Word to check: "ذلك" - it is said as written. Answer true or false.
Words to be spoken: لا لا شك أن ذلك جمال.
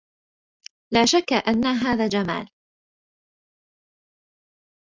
false